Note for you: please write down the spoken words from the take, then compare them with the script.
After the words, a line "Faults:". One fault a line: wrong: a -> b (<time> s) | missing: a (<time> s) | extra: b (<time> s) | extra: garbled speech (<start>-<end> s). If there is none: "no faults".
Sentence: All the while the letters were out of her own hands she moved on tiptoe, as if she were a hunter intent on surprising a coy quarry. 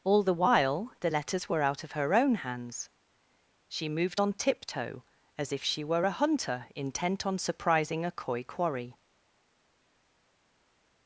All the while the letters were out of her own hands she moved on tiptoe, as if she were a hunter intent on surprising a coy quarry.
Faults:
no faults